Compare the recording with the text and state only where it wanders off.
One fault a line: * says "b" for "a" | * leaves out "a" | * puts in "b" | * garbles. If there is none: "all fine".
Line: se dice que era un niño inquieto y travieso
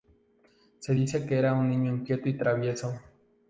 all fine